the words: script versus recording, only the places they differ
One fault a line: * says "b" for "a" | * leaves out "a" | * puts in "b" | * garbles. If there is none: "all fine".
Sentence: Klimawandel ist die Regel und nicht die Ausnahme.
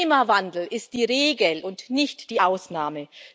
all fine